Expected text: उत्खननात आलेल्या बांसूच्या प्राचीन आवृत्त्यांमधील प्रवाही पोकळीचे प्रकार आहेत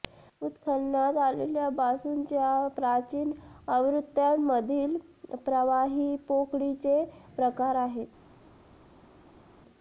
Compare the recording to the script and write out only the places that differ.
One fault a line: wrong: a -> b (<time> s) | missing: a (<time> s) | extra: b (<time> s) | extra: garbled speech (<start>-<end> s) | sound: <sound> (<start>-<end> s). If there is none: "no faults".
no faults